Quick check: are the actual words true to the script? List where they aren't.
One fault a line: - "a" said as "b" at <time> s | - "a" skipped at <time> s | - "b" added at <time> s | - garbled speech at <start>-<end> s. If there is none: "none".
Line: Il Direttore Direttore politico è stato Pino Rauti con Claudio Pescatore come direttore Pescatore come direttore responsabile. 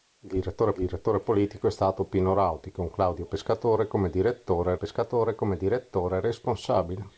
none